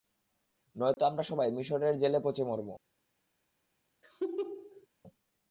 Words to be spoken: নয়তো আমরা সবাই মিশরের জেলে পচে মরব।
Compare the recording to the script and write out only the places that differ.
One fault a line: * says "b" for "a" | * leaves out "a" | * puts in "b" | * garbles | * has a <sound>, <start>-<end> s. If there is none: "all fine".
* has a dropout, 0.9-1.0 s
* has a laugh, 4.0-4.9 s